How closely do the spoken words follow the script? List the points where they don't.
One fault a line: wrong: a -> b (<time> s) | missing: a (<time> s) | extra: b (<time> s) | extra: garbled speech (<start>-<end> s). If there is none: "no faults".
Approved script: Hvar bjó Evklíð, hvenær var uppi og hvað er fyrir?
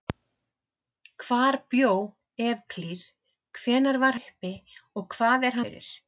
no faults